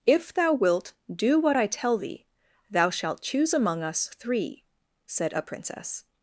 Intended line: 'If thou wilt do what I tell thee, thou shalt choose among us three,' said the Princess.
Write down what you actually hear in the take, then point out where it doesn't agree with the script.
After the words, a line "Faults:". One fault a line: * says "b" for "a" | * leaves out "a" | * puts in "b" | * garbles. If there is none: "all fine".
'If thou wilt do what I tell thee, thou shalt choose among us three,' said a Princess.
Faults:
* says "a" for "the"